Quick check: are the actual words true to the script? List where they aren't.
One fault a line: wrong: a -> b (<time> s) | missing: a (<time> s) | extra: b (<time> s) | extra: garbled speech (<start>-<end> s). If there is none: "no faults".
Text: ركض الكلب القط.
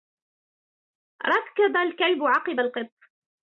extra: عقب (2.2 s)